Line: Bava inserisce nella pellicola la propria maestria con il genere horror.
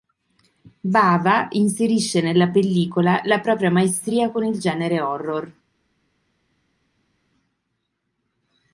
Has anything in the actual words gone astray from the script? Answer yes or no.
no